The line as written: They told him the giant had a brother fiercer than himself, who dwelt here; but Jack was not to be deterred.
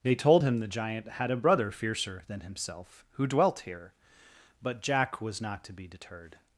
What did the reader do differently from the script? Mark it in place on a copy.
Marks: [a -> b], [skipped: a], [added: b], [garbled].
They told him the giant had a brother fiercer than himself, who dwelt here; but Jack was not to be deterred.